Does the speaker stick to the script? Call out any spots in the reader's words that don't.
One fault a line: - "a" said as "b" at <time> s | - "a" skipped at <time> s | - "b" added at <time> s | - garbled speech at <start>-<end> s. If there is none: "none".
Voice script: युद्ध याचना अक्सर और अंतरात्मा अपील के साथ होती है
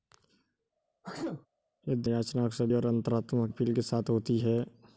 none